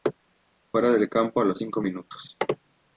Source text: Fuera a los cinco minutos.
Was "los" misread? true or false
false